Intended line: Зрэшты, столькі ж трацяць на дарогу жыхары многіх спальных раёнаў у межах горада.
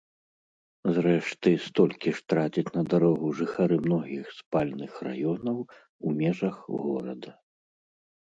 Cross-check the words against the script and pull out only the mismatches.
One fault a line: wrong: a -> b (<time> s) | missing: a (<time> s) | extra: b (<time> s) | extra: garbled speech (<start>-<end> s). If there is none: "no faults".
no faults